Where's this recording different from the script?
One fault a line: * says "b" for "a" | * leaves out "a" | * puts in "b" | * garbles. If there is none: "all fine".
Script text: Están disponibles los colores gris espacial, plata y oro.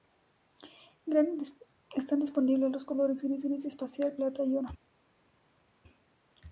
* puts in "gris"